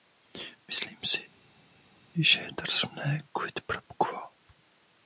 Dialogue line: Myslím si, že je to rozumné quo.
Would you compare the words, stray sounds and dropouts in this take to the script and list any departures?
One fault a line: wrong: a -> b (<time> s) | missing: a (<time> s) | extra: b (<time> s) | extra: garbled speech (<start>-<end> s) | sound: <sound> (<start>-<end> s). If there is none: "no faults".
extra: quid pro (3.3 s)